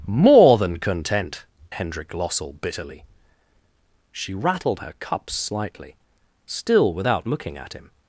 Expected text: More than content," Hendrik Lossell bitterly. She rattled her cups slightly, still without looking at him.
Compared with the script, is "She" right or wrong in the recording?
right